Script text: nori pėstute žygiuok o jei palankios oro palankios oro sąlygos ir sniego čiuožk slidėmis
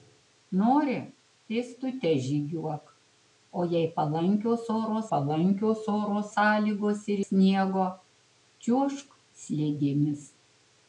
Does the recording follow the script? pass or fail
pass